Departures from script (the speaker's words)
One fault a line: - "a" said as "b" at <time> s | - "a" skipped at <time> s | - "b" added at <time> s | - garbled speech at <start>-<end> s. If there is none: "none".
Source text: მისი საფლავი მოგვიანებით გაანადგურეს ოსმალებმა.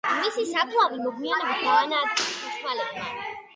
none